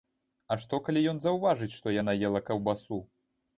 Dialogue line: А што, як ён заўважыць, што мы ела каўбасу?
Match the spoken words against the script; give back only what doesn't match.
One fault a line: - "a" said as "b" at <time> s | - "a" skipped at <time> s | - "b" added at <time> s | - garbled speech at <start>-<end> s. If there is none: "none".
- "як" said as "калі" at 0.9 s
- "мы" said as "яна" at 2.0 s